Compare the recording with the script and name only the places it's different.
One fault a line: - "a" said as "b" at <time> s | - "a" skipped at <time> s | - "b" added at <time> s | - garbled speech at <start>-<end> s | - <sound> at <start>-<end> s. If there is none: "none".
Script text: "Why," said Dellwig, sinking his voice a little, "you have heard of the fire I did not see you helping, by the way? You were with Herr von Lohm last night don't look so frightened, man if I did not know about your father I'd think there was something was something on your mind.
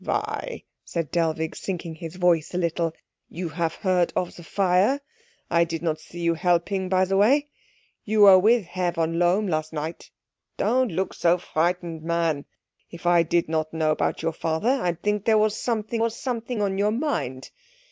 none